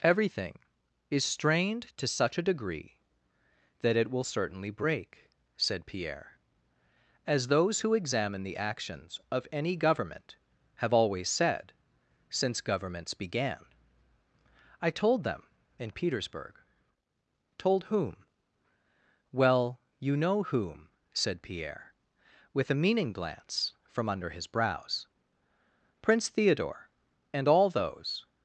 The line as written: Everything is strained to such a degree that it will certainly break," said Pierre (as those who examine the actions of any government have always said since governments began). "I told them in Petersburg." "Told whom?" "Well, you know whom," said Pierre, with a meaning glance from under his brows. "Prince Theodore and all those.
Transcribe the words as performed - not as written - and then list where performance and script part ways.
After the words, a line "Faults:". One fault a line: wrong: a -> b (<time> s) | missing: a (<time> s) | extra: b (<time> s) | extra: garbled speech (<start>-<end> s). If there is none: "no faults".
Everything is strained to such a degree that it will certainly break," said Pierre (as those who examine the actions of any government have always said since governments began). "I told them in Petersburg." "Told whom?" "Well, you know whom," said Pierre, with a meaning glance from under his brows. "Prince Theodore and all those.
Faults:
no faults